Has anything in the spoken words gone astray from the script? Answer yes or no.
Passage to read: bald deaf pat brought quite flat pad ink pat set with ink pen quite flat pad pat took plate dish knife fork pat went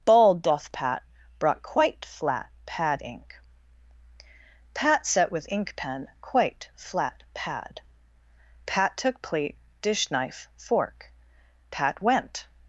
yes